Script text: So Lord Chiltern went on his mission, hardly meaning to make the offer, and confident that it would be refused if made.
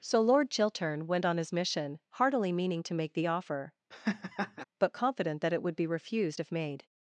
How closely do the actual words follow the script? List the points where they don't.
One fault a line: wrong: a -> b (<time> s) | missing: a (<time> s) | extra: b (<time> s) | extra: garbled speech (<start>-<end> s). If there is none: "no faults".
wrong: hardly -> heartily (2.1 s)
wrong: and -> but (4.8 s)